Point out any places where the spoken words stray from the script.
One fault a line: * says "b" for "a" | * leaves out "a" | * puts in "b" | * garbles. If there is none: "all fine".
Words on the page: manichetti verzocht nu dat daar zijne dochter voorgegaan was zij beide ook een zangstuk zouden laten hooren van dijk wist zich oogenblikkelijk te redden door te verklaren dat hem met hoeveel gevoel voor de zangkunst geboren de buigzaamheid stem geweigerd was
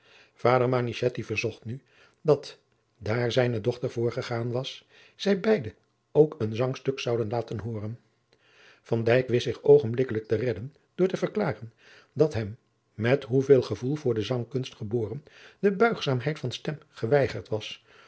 * puts in "van"